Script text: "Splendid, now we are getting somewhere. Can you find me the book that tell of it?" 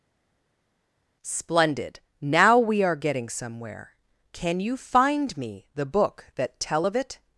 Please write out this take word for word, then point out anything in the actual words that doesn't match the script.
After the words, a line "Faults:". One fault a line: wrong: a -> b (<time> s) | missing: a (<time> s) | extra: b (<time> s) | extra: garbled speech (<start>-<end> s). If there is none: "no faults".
"Splendid, now we are getting somewhere. Can you find me the book that tell of it?"
Faults:
no faults